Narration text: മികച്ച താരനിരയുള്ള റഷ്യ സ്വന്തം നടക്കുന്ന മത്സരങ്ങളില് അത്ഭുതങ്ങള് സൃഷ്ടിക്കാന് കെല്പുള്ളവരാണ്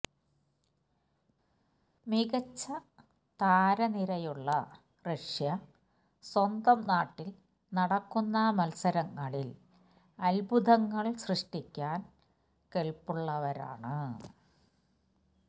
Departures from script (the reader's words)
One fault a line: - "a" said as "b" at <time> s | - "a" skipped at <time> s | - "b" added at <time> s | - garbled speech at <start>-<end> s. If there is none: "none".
- "നാട്ടില്" added at 6.8 s